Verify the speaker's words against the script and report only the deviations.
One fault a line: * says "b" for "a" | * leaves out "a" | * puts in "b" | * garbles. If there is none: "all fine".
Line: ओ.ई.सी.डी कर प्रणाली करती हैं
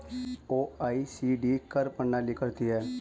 all fine